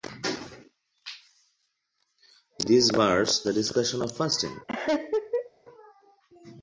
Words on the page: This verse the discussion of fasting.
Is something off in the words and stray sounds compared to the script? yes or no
yes